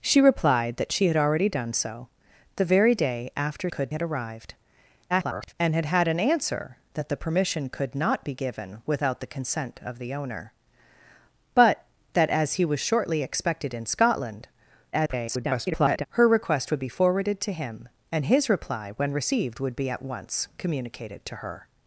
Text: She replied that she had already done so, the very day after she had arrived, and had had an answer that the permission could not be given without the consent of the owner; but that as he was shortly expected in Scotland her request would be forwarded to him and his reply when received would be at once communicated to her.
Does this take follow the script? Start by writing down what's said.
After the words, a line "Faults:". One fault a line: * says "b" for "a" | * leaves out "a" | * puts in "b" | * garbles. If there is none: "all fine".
She replied that she had already done so, the very day after could had arrived, [garbled] and had had an answer that the permission could not be given without the consent of the owner; but that as he was shortly expected in Scotland [garbled] her request would be forwarded to him and his reply when received would be at once communicated to her.
Faults:
* says "could" for "she"
* garbles
* garbles